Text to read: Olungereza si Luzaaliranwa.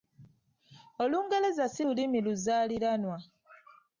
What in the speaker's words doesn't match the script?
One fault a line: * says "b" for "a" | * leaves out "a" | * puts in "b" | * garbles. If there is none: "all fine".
* puts in "Lulimi"